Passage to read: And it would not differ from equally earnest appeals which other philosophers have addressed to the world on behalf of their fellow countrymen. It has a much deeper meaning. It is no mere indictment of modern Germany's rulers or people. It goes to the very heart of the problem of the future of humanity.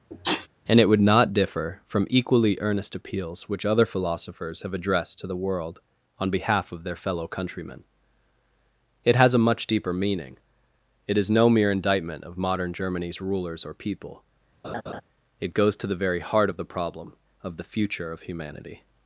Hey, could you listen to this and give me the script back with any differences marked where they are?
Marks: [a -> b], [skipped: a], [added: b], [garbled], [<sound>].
[sneeze] And it would not differ from equally earnest appeals which other philosophers have addressed to the world on behalf of their fellow countrymen. It has a much deeper meaning. It is no mere indictment of modern Germany's rulers or people. [laugh] It goes to the very heart of the problem of the future of humanity.